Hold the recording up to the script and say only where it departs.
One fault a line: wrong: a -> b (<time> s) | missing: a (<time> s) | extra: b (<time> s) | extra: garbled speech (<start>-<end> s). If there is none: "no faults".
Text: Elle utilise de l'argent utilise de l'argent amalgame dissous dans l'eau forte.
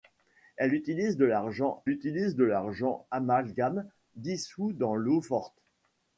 no faults